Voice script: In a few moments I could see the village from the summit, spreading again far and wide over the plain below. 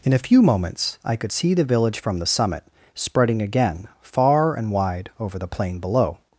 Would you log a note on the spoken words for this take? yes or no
no